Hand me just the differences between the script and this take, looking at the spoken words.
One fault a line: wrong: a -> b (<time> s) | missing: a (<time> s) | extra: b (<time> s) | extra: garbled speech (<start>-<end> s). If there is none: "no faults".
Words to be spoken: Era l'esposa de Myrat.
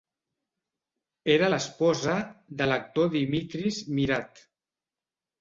extra: l'actor Dimitris (2.7 s)